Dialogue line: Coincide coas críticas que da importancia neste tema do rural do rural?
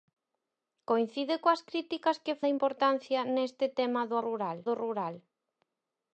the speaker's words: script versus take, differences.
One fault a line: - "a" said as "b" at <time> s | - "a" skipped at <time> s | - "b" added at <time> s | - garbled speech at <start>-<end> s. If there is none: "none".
none